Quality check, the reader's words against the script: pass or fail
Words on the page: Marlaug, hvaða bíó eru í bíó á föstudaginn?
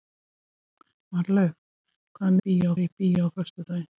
pass